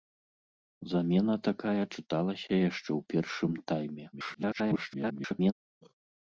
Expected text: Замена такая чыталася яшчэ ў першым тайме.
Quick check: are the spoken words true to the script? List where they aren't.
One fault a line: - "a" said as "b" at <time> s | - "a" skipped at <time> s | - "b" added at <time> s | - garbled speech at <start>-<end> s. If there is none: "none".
- garbled speech at 4.1-5.5 s